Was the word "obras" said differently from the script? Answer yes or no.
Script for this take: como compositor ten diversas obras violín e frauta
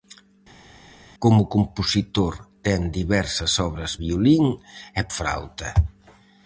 no